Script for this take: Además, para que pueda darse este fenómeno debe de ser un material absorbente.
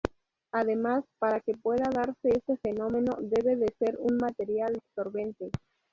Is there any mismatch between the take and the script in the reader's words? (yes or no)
no